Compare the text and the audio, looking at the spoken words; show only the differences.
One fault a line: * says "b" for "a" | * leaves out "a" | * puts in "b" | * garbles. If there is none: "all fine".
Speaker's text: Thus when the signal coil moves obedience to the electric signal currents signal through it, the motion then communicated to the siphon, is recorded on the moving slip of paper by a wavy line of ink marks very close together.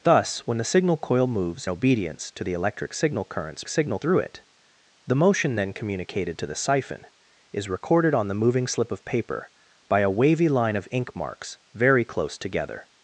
all fine